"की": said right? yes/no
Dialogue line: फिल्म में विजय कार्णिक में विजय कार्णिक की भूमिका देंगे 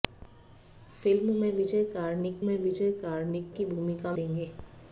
yes